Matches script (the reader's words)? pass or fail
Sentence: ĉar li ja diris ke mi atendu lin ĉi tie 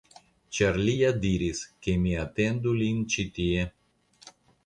pass